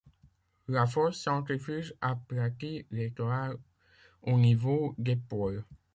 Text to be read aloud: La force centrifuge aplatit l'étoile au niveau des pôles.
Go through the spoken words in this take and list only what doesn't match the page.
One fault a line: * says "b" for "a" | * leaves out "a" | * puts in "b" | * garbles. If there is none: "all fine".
all fine